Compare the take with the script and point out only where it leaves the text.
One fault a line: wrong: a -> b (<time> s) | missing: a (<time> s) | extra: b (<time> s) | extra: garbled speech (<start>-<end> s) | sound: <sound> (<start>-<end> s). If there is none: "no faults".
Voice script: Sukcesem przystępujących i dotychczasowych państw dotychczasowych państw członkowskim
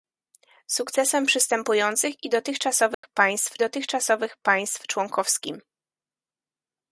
sound: dropout (2.9-3.0 s)